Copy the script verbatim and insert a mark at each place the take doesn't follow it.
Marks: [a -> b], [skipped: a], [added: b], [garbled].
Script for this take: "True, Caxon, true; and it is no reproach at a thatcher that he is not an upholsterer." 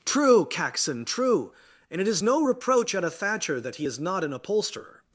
"True, Caxon, true; and it is no reproach at a thatcher that he is not an upholsterer."